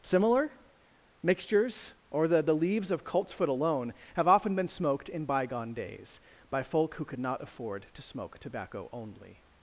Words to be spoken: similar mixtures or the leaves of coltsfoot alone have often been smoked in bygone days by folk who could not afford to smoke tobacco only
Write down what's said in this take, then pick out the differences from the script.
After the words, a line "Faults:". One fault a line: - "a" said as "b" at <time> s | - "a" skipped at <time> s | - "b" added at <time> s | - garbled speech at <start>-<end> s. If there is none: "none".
similar mixtures or the the leaves of coltsfoot alone have often been smoked in bygone days by folk who could not afford to smoke tobacco only
Faults:
- "the" added at 2.4 s